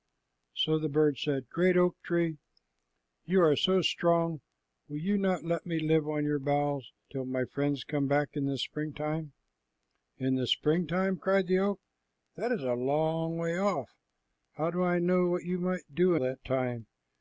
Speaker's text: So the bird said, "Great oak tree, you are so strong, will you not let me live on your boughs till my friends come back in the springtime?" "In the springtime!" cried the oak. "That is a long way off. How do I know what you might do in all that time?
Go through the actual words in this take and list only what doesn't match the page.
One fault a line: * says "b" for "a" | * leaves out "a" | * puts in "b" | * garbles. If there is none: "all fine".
* leaves out "in all"